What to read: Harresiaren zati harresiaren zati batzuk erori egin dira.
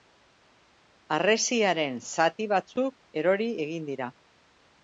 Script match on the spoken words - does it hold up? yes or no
no